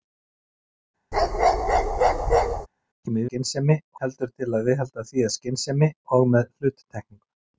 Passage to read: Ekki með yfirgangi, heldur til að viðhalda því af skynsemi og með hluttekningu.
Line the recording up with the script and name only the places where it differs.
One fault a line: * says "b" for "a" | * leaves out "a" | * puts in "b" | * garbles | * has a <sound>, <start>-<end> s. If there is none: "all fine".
* has a bark, 1.1-2.7 s
* says "skynsemi" for "yfirgangi"